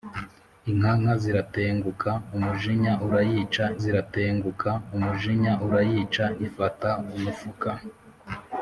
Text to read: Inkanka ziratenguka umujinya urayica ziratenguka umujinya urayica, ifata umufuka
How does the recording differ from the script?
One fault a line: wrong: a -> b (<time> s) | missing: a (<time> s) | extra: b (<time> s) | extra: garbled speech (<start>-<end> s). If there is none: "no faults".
no faults